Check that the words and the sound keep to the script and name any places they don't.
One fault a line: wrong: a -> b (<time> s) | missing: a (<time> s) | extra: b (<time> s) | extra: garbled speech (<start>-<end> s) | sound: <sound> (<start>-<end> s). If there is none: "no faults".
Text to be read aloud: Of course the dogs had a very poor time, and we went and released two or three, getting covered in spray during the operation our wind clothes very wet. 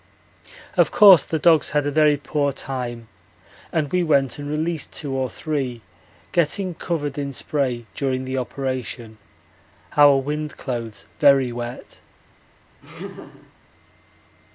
sound: laugh (12.8-13.5 s)